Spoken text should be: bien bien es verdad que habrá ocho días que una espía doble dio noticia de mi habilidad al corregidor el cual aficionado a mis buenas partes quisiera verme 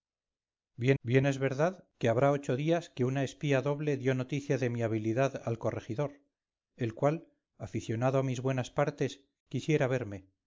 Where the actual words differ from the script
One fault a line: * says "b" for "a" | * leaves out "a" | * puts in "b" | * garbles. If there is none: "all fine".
all fine